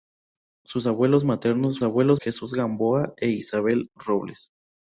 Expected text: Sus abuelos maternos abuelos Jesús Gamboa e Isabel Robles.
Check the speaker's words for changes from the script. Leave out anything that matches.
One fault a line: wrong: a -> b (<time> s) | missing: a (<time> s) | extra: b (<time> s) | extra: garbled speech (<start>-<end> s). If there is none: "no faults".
no faults